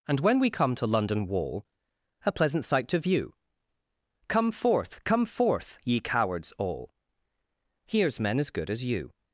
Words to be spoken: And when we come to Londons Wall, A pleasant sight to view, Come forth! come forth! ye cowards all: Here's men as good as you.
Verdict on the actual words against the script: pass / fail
fail